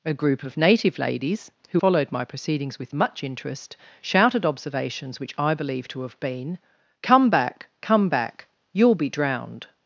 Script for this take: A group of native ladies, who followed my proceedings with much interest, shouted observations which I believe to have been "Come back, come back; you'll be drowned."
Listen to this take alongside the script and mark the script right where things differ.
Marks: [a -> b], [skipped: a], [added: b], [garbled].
A group of native ladies, who followed my proceedings with much interest, shouted observations which I believe to have been "Come back, come back; you'll be drowned."